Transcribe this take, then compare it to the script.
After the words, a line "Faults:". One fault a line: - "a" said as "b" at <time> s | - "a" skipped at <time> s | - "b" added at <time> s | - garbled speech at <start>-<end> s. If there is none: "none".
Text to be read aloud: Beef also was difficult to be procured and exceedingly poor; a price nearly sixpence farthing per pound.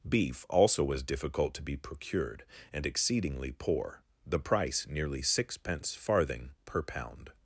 Beef also was difficult to be procured and exceedingly poor; the price nearly sixpence farthing per pound.
Faults:
- "a" said as "the" at 4.2 s